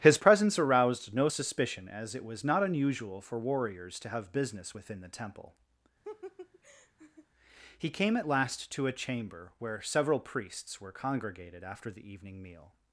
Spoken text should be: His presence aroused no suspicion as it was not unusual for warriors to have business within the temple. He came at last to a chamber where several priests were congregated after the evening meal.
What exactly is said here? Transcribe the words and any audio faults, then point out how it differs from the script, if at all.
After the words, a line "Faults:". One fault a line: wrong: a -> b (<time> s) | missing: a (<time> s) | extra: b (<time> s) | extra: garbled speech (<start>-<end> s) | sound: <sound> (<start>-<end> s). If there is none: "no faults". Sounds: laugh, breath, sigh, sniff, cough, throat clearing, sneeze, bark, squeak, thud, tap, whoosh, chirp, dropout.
His presence aroused no suspicion as it was not unusual for warriors to have business within the temple. He came at last to a chamber where several priests were congregated after the evening meal.
Faults:
sound: laugh (6.0-7.3 s)